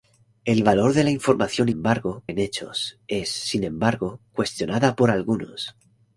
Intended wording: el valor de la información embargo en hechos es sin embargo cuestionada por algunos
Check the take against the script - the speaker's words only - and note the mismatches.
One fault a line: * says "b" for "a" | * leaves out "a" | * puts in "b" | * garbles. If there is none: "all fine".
all fine